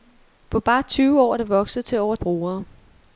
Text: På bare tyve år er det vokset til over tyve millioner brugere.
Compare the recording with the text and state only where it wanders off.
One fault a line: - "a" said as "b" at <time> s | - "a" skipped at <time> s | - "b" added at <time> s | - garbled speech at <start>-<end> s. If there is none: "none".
- "tyve millioner" skipped at 2.1 s